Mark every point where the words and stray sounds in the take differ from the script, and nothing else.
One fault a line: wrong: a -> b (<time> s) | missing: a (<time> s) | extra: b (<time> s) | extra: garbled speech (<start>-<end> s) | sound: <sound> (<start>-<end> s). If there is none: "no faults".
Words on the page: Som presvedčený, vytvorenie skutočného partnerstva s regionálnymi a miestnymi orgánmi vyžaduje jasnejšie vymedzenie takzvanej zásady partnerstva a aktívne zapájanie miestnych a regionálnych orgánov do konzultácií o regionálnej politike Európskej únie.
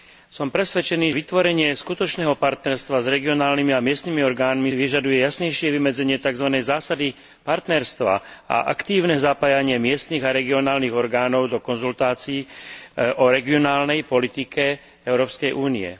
no faults